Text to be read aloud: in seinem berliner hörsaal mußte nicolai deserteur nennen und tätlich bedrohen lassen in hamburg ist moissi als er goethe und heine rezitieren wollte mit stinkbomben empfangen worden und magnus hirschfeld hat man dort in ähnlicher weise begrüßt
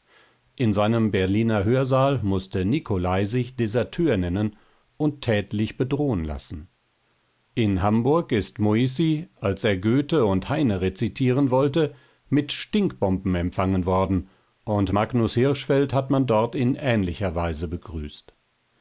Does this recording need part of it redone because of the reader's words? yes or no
yes